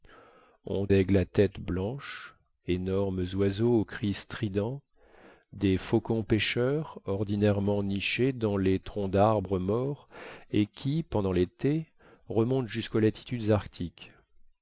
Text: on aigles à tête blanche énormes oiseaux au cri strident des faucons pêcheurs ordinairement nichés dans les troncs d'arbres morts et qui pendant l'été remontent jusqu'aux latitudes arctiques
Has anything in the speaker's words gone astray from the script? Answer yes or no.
no